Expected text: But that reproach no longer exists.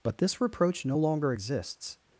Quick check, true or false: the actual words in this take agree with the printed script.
false